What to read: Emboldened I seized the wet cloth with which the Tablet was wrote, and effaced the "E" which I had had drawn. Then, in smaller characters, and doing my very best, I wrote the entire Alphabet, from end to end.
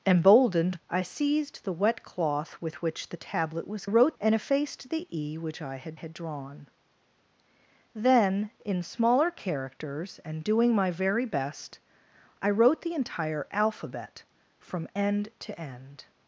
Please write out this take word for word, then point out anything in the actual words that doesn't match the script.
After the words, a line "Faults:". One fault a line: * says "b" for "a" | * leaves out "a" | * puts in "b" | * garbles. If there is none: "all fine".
Emboldened I seized the wet cloth with which the Tablet was wrote, and effaced the "E" which I had had drawn. Then, in smaller characters, and doing my very best, I wrote the entire Alphabet, from end to end.
Faults:
all fine